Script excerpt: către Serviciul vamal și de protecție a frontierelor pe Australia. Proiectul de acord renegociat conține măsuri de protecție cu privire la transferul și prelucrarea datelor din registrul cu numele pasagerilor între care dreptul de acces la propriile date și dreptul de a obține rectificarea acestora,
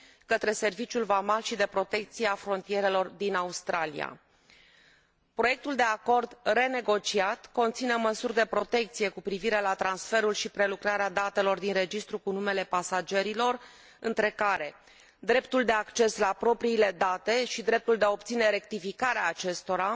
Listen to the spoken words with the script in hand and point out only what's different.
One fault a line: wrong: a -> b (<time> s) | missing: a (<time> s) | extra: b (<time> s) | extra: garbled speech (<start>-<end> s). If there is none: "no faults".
wrong: pe -> din (3.1 s)